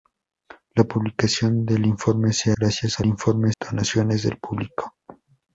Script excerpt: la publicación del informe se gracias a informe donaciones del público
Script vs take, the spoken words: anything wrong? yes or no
no